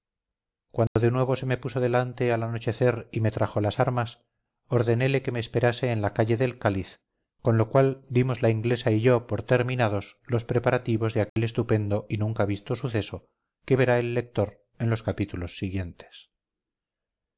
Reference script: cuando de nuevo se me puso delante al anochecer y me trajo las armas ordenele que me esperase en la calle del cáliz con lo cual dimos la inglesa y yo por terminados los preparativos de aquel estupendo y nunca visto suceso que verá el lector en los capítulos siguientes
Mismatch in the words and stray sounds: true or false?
true